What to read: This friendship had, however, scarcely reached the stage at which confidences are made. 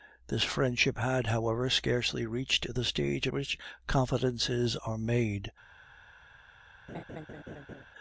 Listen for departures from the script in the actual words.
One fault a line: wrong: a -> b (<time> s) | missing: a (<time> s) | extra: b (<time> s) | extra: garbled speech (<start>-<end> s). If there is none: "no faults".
no faults